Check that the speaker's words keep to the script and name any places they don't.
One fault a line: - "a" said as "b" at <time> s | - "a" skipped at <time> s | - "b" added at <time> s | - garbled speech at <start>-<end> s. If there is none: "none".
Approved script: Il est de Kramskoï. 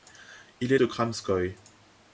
none